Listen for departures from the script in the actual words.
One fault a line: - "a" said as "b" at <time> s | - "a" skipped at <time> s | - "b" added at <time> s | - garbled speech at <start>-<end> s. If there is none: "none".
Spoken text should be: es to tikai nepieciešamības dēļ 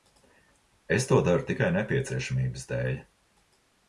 - "daru" added at 1.3 s